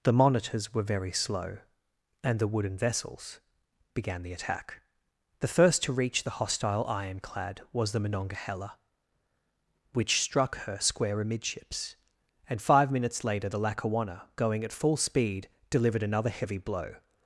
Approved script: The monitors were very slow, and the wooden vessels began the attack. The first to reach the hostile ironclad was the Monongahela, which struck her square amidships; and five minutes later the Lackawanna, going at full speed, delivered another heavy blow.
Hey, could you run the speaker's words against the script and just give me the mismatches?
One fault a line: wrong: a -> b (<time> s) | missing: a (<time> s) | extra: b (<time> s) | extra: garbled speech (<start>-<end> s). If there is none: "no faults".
no faults